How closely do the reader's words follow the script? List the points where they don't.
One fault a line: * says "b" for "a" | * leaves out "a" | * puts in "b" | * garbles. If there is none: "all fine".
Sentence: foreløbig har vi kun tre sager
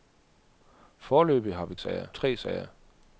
* says "sager" for "kun"